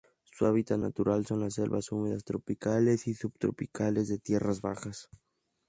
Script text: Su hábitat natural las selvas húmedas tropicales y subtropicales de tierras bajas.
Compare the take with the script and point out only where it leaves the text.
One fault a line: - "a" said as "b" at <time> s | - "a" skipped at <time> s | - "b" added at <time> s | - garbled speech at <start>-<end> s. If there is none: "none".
- "son" added at 1.3 s